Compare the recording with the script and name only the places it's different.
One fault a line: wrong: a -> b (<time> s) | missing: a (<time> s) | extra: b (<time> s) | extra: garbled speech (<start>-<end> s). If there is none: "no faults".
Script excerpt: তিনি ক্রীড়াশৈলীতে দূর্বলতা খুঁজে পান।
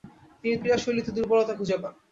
no faults